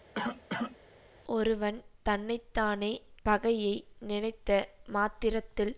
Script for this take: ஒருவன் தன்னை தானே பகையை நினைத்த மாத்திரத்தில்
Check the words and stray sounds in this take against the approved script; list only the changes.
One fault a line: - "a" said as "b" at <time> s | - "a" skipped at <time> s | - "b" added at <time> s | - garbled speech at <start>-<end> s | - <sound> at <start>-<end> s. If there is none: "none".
- cough at 0.1-0.8 s